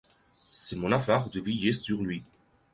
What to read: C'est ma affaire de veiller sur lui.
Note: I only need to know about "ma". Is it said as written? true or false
false